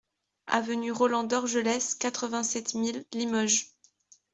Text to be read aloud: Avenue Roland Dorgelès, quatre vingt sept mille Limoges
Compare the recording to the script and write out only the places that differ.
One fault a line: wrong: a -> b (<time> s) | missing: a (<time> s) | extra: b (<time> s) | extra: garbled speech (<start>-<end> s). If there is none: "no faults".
no faults